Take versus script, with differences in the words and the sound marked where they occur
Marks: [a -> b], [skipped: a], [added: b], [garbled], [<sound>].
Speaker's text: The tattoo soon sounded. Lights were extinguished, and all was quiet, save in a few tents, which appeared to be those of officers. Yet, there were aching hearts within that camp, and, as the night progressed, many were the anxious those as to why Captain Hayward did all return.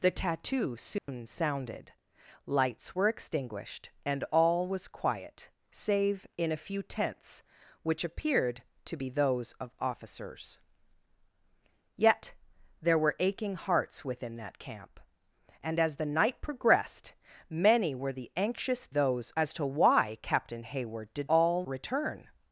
The tattoo soon [dropout] sounded. Lights were extinguished, and all was quiet, save in a few tents, which appeared to be those of officers. Yet, there were aching hearts within that camp, and, as the night progressed, many were the anxious those as to why Captain Hayward did all return.